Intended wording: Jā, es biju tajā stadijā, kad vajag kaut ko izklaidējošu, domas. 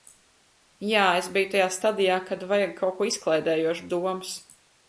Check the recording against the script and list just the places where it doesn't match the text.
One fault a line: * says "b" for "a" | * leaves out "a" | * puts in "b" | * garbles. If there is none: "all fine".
all fine